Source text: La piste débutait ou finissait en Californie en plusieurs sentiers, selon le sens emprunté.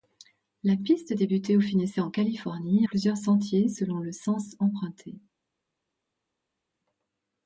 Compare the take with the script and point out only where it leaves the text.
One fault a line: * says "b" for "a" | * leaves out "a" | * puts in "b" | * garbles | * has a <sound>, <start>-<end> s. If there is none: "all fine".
* leaves out "en"